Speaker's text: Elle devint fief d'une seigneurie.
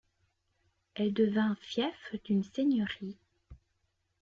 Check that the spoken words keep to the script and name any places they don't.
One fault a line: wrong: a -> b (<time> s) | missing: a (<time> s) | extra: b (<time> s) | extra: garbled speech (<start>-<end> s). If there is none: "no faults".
no faults